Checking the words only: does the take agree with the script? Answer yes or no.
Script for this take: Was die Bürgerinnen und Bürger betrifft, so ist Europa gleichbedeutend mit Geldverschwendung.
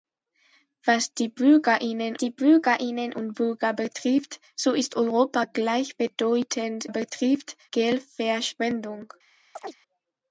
no